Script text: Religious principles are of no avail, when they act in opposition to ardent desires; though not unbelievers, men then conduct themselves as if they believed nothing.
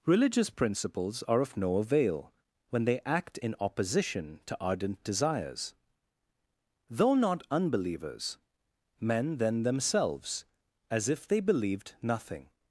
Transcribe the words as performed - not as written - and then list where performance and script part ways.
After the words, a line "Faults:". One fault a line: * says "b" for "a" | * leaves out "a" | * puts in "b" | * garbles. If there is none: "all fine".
Religious principles are of no avail, when they act in opposition to ardent desires; though not unbelievers, men then themselves as if they believed nothing.
Faults:
* leaves out "conduct"